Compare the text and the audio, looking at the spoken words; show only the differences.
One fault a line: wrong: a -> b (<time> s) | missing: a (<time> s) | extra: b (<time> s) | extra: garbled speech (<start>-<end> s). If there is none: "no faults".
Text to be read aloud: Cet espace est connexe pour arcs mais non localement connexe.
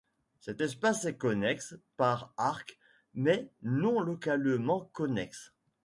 wrong: pour -> par (2.0 s)